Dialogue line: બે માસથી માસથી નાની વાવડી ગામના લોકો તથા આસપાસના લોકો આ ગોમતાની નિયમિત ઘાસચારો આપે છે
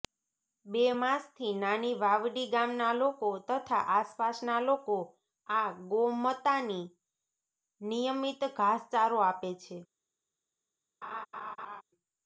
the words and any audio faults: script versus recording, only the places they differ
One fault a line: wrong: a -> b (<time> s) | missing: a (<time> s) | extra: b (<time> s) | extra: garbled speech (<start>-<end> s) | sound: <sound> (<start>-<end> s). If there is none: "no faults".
missing: માસથી (1.5 s)
sound: laugh (11.0-11.8 s)